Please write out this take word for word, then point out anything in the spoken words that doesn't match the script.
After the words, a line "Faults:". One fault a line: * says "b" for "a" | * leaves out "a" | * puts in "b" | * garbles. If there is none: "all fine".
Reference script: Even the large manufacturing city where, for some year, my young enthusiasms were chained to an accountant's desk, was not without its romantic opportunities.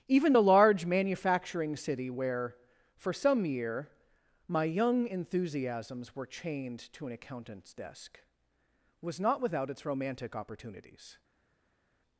Even the large manufacturing city where, for some year, my young enthusiasms were chained to an accountant's desk, was not without its romantic opportunities.
Faults:
all fine